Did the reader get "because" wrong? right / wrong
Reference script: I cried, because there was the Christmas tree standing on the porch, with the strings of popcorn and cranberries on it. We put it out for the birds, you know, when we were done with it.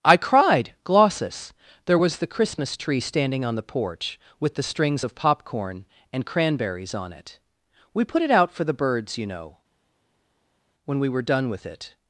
wrong